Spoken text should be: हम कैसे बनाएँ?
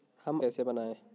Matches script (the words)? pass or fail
pass